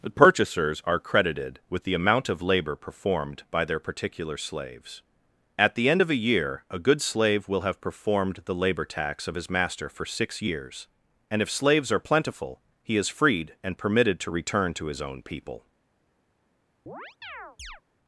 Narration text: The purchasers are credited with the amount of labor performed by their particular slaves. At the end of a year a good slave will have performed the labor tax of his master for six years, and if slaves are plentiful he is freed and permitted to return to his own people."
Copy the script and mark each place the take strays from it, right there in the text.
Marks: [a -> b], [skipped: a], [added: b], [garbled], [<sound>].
The purchasers are credited with the amount of labor performed by their particular slaves. At the end of a year a good slave will have performed the labor tax of his master for six years, and if slaves are plentiful he is freed and permitted to return to his own people." [chirp]